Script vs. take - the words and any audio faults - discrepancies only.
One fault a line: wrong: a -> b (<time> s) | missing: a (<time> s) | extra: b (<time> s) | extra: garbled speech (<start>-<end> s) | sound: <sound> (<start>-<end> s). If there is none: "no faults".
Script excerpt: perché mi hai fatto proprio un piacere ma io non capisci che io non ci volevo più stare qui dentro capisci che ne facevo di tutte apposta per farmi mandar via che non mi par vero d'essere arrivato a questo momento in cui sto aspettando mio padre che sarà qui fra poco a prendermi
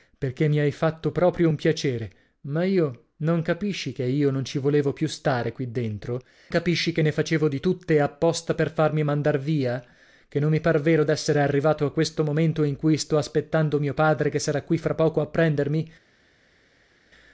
no faults